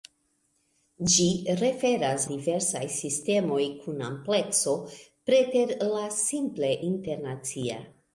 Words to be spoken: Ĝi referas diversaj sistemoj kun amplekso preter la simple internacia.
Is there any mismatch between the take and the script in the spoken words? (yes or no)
no